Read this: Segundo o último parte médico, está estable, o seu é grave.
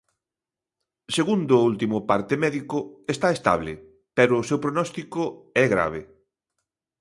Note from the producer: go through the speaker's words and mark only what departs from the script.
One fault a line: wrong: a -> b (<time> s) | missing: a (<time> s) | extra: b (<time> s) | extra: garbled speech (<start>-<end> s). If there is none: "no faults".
extra: pero (4.2 s)
extra: prognóstico (4.6 s)